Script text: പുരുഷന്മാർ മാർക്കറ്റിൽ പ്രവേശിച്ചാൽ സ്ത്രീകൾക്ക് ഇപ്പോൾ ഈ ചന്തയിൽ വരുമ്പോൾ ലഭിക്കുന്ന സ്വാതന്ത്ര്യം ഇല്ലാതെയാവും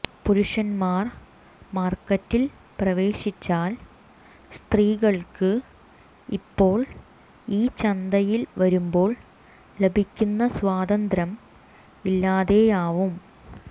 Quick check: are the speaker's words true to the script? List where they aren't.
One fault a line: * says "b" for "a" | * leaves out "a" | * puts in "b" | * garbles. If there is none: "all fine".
all fine